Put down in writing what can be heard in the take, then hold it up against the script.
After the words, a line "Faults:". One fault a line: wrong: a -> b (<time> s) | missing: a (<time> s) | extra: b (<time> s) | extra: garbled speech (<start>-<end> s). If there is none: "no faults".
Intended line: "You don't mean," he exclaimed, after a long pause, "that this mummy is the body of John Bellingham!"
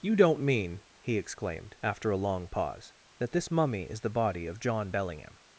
"You don't mean," he exclaimed, after a long pause, "that this mummy is the body of John Bellingham!"
Faults:
no faults